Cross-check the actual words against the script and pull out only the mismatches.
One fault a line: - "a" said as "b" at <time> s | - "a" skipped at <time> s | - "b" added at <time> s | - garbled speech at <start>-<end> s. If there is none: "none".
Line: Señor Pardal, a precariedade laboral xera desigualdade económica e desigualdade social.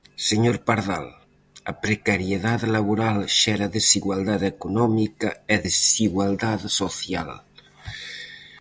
none